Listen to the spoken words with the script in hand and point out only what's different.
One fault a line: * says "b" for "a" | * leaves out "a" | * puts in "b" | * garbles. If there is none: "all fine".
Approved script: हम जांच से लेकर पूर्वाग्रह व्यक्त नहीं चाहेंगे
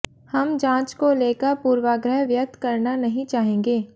* says "को" for "से"
* puts in "करना"